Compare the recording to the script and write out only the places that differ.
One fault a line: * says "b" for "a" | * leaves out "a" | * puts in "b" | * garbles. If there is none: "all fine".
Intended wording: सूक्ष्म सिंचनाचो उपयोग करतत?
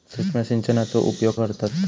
all fine